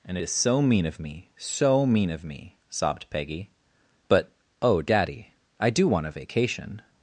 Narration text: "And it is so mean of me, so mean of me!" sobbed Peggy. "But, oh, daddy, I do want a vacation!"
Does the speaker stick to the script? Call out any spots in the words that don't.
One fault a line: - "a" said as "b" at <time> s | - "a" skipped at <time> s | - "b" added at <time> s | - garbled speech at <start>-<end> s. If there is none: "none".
- "it" skipped at 0.2 s